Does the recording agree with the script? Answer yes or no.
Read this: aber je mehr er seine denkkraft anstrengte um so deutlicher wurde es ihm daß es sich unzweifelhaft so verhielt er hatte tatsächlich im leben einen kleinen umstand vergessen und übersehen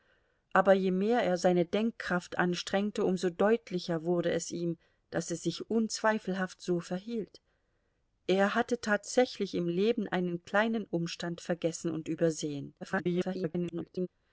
no